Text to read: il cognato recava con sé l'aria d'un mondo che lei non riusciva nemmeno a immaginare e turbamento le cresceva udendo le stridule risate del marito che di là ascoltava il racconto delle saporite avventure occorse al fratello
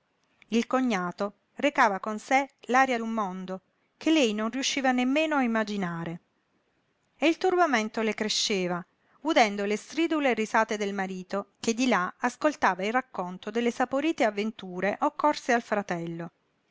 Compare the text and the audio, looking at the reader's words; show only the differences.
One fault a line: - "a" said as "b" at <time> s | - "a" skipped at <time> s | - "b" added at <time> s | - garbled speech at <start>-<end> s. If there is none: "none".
- "il" added at 7.3 s